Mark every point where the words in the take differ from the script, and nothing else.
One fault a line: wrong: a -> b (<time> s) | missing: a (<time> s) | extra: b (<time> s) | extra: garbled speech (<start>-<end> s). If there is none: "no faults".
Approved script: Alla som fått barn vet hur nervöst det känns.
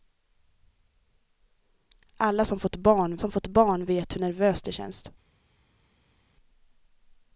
extra: som fått barn (3.2 s)